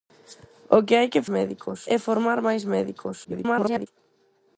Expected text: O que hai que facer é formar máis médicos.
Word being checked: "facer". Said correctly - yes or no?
no